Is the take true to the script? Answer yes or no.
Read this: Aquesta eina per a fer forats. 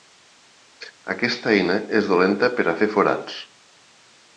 no